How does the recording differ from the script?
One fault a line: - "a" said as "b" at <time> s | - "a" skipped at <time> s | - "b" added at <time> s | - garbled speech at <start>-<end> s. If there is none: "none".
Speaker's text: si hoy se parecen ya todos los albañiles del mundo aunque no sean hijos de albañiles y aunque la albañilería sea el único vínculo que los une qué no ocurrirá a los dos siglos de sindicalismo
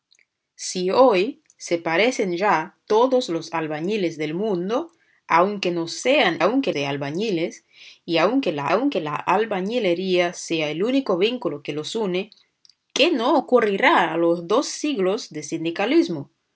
- "hijos" said as "aunque" at 6.4 s
- "aunque la" added at 8.7 s